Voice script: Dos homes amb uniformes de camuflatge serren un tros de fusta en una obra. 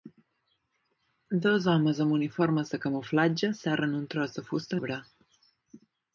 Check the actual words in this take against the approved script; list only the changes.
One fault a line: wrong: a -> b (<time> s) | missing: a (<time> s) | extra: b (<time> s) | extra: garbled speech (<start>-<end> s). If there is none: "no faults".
missing: en una (4.8 s)